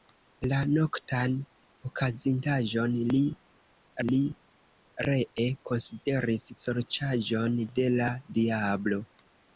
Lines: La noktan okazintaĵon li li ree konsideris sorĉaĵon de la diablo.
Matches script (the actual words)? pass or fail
pass